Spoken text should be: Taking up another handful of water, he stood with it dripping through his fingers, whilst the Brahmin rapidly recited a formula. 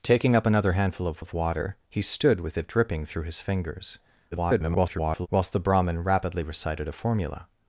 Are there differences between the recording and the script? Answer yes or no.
yes